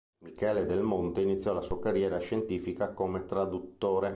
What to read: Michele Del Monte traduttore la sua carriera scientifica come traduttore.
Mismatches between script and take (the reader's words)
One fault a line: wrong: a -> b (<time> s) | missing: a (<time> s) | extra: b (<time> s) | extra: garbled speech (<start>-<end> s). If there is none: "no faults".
wrong: traduttore -> iniziò (1.2 s)